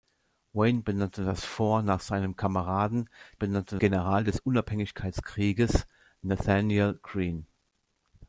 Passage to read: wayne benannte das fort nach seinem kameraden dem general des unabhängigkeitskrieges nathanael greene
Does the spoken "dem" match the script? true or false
false